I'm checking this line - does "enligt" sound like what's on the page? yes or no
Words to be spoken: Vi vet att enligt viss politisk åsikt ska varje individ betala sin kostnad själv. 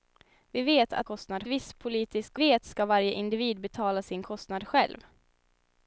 no